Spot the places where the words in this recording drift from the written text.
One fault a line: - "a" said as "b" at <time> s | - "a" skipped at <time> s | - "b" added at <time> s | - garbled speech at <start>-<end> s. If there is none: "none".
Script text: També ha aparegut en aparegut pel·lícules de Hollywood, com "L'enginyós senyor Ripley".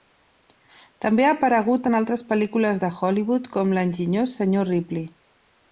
- "aparegut" said as "altres" at 2.0 s